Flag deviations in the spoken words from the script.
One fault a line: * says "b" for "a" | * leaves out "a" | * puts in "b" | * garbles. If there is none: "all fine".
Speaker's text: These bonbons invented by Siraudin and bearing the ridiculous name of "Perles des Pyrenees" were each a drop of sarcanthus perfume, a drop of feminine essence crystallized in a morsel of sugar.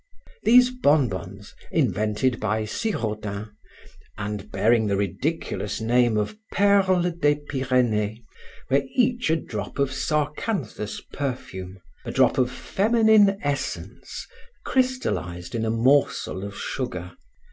all fine